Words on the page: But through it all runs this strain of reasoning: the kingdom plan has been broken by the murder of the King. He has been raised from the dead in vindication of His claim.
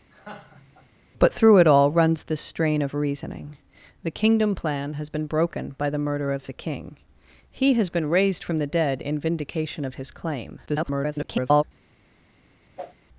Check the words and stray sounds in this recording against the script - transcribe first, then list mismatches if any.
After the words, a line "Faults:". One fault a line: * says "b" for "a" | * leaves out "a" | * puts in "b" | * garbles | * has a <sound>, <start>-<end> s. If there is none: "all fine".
But through it all runs this strain of reasoning: the kingdom plan has been broken by the murder of the King. He has been raised from the dead in vindication of His claim. [garbled]
Faults:
* has a laugh, 0.1-0.9 s
* garbles
* has a whoosh, 12.8-12.9 s